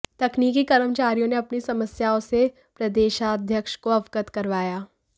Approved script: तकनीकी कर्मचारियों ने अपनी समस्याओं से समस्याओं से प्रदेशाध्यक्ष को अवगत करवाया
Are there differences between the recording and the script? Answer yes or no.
yes